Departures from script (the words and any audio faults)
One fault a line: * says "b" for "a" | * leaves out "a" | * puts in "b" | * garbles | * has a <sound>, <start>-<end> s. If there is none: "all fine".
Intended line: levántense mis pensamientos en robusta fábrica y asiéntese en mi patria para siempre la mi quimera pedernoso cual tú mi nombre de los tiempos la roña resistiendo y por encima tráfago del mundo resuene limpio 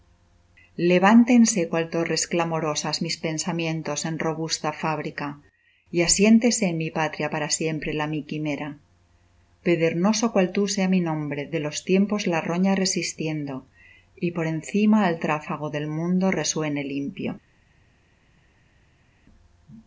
* puts in "cual torres clamorosas"
* puts in "sea"
* puts in "al"